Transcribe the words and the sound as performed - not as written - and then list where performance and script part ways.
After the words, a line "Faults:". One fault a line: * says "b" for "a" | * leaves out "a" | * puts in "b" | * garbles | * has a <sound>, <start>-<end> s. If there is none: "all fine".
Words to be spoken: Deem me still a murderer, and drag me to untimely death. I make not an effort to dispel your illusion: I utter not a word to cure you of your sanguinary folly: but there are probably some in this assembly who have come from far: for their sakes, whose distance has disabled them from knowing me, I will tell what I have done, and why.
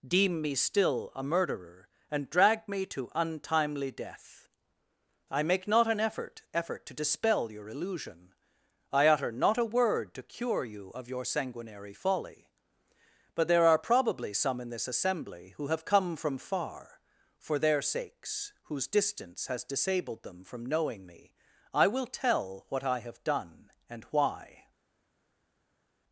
Deem me still a murderer, and drag me to untimely death. I make not an effort effort to dispel your illusion: I utter not a word to cure you of your sanguinary folly: but there are probably some in this assembly who have come from far: for their sakes, whose distance has disabled them from knowing me, I will tell what I have done, and why.
Faults:
* puts in "effort"